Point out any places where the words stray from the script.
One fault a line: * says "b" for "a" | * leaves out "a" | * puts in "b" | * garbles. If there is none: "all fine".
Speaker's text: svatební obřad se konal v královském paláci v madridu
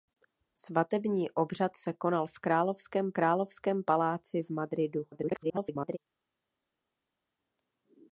* puts in "královském"
* garbles